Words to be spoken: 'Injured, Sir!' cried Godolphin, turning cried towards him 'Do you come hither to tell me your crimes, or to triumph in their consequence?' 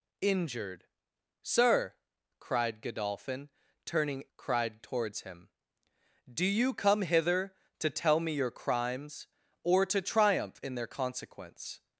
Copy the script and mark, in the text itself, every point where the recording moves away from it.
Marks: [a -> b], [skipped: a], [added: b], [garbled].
'Injured, Sir!' cried Godolphin, turning cried towards him 'Do you come hither to tell me your crimes, or to triumph in their consequence?'